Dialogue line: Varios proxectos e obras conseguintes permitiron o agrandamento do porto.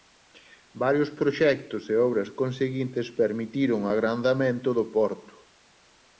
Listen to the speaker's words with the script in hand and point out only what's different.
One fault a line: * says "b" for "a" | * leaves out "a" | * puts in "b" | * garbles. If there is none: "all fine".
all fine